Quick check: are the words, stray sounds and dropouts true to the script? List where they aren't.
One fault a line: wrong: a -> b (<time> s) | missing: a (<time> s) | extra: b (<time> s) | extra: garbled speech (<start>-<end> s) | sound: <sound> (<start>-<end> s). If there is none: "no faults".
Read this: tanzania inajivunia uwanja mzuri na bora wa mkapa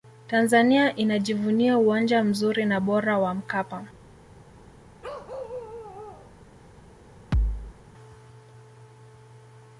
sound: bark (5.0-6.3 s)
sound: thud (7.3-7.8 s)